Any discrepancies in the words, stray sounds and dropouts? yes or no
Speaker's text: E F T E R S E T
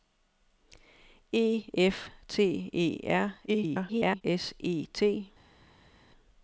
yes